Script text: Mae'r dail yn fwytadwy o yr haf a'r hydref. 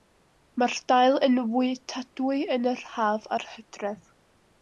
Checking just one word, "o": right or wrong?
wrong